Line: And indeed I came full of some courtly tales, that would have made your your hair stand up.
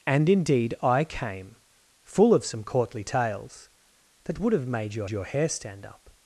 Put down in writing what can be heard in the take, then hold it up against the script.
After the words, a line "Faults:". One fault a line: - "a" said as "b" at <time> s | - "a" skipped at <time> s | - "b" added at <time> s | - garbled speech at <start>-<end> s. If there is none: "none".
And indeed I came full of some courtly tales, that would have made your your hair stand up.
Faults:
none